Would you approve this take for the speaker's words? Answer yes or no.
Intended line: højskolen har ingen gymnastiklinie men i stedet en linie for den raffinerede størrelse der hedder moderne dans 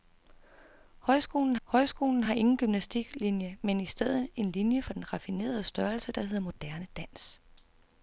no